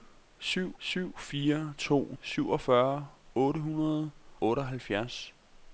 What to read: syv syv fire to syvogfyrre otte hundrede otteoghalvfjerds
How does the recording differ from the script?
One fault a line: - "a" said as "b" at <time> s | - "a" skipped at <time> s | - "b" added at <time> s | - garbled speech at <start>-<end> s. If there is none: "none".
none